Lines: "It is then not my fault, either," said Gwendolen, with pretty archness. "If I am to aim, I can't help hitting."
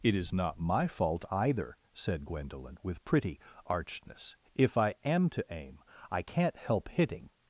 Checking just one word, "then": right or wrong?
wrong